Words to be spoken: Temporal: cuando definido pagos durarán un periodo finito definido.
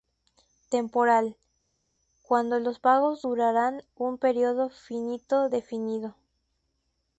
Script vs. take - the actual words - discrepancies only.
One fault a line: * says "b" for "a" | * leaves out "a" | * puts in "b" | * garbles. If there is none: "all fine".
* says "los" for "definido"